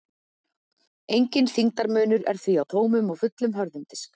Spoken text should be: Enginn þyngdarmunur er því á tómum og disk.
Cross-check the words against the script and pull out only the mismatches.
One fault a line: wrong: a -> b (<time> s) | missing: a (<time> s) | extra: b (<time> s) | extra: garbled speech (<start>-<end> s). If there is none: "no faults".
extra: fullum hörðum (3.2 s)